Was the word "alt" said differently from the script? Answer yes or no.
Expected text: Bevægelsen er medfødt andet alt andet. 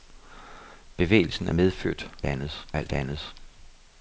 no